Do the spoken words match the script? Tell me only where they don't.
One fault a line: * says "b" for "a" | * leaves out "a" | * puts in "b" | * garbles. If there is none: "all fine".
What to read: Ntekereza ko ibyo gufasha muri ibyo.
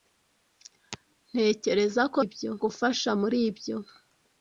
all fine